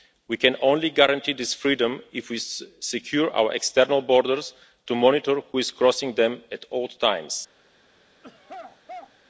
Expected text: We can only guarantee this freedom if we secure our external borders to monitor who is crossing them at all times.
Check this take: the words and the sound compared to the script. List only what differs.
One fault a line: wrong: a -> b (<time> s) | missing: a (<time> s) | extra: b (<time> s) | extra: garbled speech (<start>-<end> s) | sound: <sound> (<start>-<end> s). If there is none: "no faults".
sound: throat clearing (8.2-9.2 s)